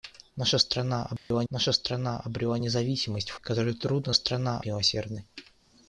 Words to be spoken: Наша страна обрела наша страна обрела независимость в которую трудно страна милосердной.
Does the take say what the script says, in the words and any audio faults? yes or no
no